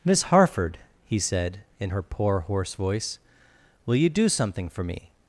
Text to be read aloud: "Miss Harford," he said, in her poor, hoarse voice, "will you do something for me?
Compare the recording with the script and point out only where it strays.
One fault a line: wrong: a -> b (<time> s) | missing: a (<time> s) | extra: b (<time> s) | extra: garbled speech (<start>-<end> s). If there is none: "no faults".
no faults